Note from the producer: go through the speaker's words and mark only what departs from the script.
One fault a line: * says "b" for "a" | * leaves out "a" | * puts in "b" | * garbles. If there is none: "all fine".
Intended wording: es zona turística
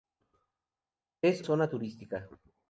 all fine